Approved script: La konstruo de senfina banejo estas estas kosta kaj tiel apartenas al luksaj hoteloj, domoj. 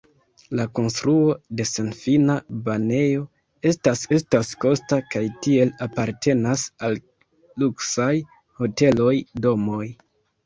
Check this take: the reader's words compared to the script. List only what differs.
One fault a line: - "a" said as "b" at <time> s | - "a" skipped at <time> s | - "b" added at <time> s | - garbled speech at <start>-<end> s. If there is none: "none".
none